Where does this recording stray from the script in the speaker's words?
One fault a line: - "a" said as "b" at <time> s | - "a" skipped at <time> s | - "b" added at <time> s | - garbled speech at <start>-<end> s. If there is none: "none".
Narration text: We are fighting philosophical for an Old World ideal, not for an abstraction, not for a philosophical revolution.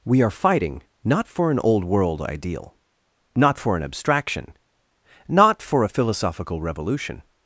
- "philosophical" said as "not" at 1.0 s